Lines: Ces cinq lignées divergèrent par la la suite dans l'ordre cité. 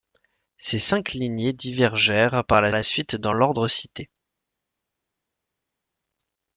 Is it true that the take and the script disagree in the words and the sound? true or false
false